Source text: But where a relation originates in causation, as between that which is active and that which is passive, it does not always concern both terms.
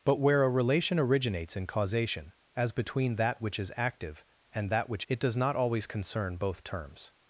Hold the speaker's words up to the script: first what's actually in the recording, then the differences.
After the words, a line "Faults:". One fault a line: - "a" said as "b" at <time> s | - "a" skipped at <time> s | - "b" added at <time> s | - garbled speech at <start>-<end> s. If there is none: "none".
But where a relation originates in causation, as between that which is active and that which it does not always concern both terms.
Faults:
- "is passive" skipped at 5.0 s